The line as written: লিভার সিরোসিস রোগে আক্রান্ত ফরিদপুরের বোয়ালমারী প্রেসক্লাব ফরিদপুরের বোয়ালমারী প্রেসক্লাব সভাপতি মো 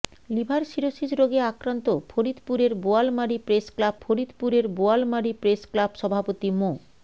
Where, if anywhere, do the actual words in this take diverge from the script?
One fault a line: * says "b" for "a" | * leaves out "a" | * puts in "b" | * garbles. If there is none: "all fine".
all fine